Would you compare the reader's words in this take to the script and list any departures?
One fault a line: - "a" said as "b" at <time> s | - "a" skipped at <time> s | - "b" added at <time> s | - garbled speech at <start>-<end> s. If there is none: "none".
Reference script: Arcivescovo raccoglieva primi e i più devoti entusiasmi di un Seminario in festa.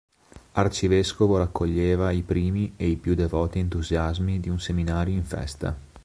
- "i" added at 2.1 s